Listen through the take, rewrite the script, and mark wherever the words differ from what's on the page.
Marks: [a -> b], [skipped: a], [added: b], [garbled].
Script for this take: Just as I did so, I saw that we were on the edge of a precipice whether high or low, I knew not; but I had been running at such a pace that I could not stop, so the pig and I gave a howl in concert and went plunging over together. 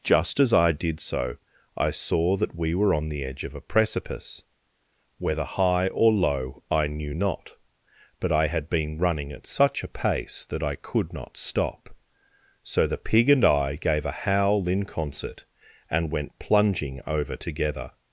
Just as I did so, I saw that we were on the edge of a precipice whether high or low, I knew not; but I had been running at such a pace that I could not stop, so the pig and I gave a howl in concert and went plunging over together.